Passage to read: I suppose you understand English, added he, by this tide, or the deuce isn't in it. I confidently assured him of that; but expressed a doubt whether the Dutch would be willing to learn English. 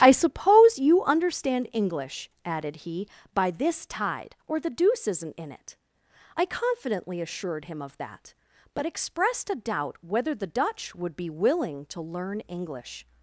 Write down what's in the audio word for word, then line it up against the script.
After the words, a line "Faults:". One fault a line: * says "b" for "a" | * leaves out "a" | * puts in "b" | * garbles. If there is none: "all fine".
I suppose you understand English, added he, by this tide, or the deuce isn't in it. I confidently assured him of that; but expressed a doubt whether the Dutch would be willing to learn English.
Faults:
all fine